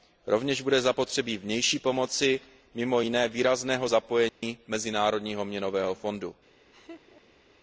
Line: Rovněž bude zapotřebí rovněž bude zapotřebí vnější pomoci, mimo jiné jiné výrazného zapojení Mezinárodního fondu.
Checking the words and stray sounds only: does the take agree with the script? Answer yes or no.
no